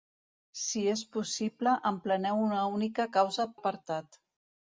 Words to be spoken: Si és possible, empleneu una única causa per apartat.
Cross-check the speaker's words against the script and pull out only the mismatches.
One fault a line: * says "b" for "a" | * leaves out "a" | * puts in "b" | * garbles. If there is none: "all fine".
* leaves out "per"